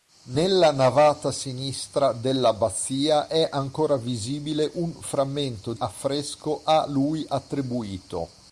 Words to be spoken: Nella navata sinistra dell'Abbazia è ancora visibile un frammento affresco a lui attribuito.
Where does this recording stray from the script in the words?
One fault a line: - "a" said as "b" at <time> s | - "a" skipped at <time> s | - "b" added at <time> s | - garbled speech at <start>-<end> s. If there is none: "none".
none